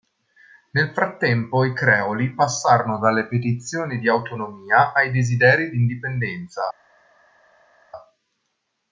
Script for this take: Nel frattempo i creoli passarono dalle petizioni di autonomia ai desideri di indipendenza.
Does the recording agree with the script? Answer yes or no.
yes